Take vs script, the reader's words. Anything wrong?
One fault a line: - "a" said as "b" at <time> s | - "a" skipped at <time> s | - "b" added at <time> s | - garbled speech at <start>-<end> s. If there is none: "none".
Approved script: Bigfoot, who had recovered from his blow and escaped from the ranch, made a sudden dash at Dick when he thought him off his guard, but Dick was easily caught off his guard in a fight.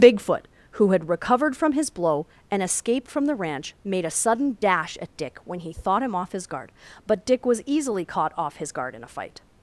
none